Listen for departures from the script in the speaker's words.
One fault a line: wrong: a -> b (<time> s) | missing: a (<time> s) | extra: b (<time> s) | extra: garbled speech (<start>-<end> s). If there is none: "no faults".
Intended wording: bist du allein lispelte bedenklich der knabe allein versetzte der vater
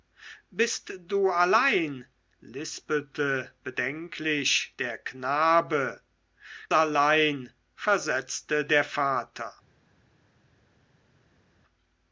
no faults